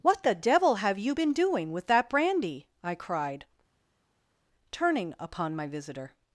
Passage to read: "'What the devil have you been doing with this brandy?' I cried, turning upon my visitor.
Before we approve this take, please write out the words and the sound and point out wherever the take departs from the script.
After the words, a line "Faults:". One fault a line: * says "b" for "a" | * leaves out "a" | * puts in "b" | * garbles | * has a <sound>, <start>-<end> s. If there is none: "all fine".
"'What the devil have you been doing with that brandy?' I cried, turning upon my visitor.
Faults:
* says "that" for "this"